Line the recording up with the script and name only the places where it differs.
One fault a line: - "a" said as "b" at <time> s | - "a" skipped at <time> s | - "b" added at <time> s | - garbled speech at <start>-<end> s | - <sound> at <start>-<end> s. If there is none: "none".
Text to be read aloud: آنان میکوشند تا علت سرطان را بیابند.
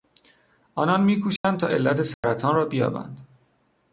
- dropout at 1.4-1.4 s
- dropout at 2.1-2.2 s